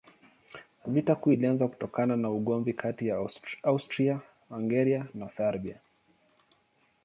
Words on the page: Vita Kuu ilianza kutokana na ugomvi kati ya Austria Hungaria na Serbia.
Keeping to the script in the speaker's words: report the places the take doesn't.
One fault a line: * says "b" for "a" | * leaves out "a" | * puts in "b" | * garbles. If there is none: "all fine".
all fine